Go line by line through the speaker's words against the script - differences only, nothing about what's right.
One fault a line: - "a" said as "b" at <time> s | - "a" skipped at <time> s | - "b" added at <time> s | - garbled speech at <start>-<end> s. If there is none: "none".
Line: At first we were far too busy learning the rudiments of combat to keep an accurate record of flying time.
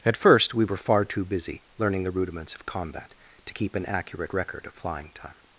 none